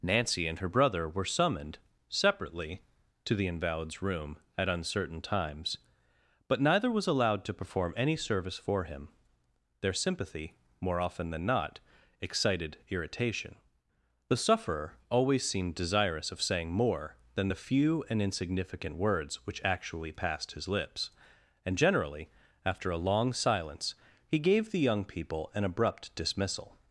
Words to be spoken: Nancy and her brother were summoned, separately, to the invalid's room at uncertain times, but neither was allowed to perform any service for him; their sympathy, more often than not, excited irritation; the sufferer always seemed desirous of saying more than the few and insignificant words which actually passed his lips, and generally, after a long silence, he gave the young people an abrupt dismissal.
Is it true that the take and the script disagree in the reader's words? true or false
false